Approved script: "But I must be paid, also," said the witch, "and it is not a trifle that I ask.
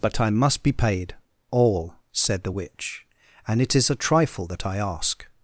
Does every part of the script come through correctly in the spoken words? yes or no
no